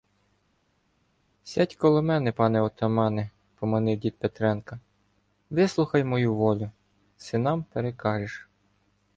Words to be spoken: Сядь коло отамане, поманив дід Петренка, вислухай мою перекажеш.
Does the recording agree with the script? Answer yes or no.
no